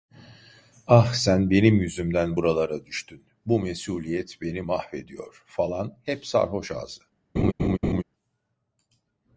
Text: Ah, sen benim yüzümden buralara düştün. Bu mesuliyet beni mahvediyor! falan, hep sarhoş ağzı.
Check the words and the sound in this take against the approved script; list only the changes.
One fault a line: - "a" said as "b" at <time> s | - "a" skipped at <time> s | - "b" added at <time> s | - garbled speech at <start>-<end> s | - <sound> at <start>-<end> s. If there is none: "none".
- laugh at 7.4-8.0 s